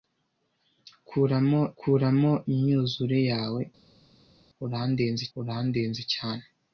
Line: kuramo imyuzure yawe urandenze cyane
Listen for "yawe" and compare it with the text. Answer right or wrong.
right